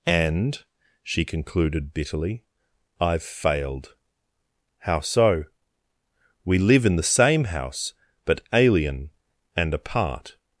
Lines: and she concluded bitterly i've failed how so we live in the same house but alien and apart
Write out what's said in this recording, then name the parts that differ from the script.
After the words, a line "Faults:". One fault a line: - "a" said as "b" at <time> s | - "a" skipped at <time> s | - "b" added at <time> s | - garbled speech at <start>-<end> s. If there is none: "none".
and she concluded bitterly i've failed how so we live in the same house but alien and apart
Faults:
none